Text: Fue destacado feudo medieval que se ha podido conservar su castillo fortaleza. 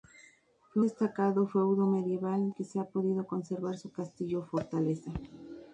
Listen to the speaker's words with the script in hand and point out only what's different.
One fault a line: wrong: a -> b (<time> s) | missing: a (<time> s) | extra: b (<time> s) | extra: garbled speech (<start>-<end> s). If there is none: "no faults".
no faults